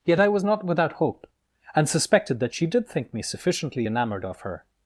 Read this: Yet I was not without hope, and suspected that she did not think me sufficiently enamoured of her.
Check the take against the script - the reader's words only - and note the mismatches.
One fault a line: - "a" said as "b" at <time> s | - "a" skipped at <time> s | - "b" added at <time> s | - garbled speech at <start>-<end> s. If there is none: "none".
- "not" skipped at 2.9 s